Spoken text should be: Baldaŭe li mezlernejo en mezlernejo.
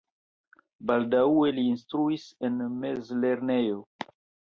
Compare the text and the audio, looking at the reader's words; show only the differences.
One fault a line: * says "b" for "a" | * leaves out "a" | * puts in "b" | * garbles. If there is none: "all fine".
* says "instruis" for "mezlernejo"